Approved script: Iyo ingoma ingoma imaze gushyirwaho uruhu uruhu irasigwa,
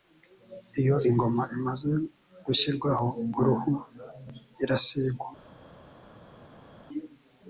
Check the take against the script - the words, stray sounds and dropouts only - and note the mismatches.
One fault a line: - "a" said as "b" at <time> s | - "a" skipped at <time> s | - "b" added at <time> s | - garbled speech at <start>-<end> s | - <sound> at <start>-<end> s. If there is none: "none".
- "ingoma" skipped at 1.4 s
- "uruhu" skipped at 3.7 s